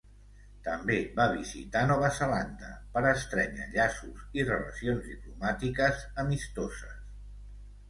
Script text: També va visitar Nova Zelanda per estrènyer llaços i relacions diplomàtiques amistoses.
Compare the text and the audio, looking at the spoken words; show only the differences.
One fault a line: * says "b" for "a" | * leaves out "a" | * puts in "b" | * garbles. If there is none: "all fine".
all fine